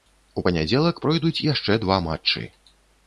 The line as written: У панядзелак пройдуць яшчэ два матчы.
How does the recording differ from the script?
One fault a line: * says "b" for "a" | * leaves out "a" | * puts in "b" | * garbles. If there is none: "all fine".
all fine